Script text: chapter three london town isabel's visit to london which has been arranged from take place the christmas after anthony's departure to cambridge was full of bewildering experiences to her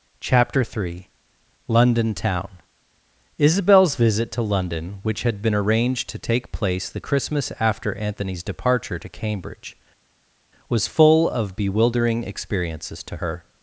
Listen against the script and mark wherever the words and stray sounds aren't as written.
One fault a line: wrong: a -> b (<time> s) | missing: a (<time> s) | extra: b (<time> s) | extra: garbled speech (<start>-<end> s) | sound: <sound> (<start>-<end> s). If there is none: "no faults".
wrong: has -> had (5.2 s)
wrong: from -> to (6.1 s)